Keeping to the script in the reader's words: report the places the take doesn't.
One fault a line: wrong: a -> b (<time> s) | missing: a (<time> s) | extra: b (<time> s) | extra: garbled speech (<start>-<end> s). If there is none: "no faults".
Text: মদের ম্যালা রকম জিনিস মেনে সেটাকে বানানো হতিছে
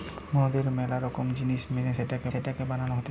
extra: সেটাকে (2.3 s)